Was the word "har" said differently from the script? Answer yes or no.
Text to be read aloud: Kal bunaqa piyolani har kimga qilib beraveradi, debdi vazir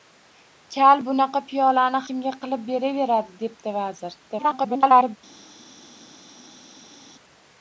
yes